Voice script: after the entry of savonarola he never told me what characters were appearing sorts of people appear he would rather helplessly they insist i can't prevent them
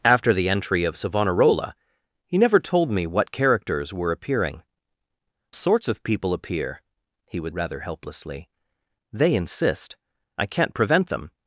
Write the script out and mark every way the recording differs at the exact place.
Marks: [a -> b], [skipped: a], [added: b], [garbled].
after the entry of savonarola he never told me what characters were appearing sorts of people appear he would rather helplessly they insist i can't prevent them